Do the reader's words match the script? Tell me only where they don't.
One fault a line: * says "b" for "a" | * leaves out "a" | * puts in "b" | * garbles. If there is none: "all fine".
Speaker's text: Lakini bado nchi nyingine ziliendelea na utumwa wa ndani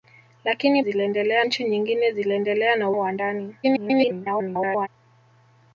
* says "ziliendelea" for "bado"
* leaves out "utumwa"
* garbles